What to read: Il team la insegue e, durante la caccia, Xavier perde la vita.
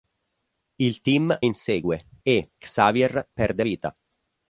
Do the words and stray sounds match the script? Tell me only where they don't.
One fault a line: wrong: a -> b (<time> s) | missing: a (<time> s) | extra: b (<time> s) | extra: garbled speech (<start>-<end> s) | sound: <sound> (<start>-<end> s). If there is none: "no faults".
missing: la (1.4 s)
missing: durante la caccia (2.5 s)
missing: la (3.6 s)